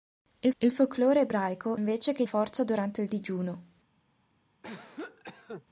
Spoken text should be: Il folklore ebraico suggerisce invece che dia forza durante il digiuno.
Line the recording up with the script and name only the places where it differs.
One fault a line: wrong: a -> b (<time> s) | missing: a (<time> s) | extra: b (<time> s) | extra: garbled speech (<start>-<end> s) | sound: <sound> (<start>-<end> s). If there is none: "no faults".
extra: il (0.6 s)
missing: suggerisce (1.8 s)
missing: dia (2.2 s)
sound: cough (4.6-5.6 s)